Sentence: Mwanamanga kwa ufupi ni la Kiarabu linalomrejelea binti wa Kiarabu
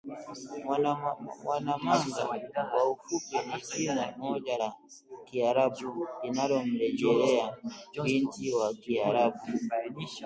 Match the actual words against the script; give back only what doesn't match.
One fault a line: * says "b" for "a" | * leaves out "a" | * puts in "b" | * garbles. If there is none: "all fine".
* puts in "jina moja"